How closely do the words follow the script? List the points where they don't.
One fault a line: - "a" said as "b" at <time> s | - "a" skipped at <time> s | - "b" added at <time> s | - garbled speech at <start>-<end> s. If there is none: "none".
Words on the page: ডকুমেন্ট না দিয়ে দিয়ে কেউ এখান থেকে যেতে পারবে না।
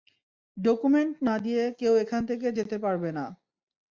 - "দিয়ে" skipped at 1.6 s